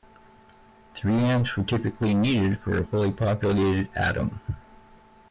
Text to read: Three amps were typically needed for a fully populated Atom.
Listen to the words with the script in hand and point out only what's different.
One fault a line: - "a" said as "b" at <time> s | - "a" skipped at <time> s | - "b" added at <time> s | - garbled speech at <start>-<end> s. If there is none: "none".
none